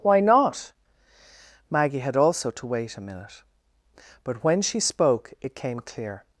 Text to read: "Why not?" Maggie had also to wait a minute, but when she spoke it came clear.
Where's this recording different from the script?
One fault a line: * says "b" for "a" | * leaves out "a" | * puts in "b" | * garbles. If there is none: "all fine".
all fine